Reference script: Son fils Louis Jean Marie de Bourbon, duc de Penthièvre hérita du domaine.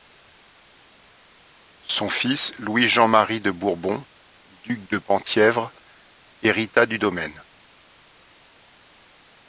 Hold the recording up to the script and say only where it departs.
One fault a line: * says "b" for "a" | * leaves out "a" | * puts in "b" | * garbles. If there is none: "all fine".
all fine